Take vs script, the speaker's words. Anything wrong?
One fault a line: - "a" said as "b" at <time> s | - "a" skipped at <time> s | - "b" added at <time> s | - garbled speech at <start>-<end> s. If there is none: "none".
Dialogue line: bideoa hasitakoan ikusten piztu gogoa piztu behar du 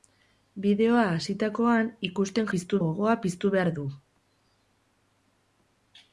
none